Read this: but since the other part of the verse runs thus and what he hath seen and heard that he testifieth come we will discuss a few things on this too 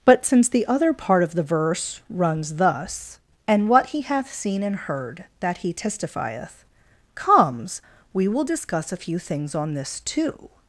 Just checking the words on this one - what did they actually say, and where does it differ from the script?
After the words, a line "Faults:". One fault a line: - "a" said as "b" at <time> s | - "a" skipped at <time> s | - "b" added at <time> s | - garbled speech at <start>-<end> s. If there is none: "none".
but since the other part of the verse runs thus and what he hath seen and heard that he testifieth comes we will discuss a few things on this too
Faults:
- "come" said as "comes" at 7.2 s